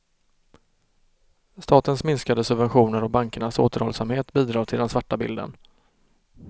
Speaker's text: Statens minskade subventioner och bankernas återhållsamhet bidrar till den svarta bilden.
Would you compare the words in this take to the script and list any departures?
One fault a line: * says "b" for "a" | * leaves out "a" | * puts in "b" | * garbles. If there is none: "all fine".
all fine